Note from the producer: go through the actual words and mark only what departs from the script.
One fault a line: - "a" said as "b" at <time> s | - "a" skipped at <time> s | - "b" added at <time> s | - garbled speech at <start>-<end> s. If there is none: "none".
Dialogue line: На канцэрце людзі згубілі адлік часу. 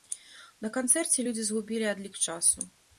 none